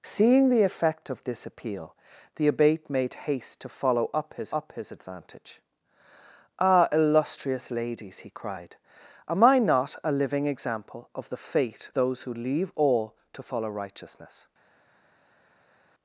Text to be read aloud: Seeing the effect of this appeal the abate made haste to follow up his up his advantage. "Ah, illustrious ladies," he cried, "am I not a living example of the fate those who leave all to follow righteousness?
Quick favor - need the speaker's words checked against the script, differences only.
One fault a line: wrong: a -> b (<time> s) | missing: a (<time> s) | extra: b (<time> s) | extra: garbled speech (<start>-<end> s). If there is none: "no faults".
no faults